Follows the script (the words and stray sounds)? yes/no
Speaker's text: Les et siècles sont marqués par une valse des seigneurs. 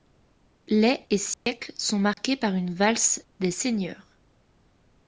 no